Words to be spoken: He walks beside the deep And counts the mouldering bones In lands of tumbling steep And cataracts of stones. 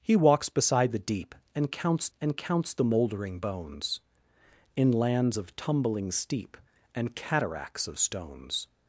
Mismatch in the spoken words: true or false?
true